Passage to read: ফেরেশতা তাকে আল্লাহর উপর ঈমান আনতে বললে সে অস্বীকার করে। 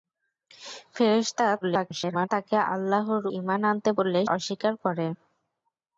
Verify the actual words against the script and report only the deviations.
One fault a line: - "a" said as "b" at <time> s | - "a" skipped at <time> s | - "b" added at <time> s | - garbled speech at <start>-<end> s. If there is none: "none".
- garbled speech at 1.6-2.3 s
- "উপর" skipped at 3.2 s
- "সে" skipped at 4.2 s